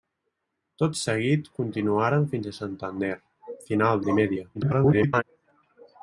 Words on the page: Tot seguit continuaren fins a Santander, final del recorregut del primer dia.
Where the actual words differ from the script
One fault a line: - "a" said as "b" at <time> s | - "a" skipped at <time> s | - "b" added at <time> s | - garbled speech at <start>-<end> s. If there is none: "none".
- "del recorregut del" skipped at 4.0 s
- garbled speech at 4.5-5.2 s